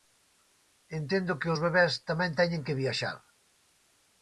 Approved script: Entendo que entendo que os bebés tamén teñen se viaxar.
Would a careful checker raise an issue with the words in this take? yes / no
yes